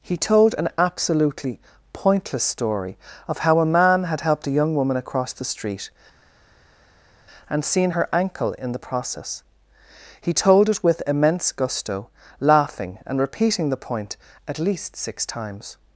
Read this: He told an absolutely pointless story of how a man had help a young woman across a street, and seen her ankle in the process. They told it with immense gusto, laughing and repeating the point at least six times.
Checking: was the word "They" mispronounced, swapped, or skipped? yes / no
yes